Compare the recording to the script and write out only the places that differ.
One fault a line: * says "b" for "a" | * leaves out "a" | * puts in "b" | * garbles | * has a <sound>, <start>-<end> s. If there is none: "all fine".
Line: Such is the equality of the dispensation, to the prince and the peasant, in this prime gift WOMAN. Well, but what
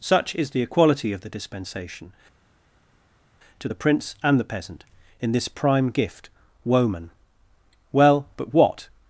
all fine